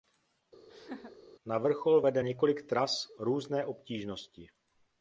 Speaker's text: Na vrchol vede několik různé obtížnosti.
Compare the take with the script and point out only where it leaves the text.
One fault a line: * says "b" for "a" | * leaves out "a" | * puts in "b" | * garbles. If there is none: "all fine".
* puts in "tras"